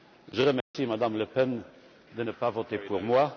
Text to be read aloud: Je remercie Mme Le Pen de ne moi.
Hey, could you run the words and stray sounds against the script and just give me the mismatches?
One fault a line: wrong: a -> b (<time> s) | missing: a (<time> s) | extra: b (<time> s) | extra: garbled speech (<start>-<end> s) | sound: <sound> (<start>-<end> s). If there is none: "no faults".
sound: dropout (0.6-0.7 s)
extra: pas voter pour (2.3 s)